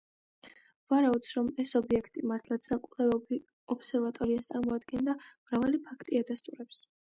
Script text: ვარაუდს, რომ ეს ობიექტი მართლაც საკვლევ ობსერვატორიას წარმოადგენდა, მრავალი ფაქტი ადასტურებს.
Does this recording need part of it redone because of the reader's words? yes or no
no